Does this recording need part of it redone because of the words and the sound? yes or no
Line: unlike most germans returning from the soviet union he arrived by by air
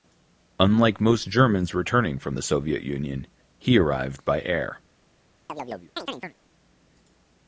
yes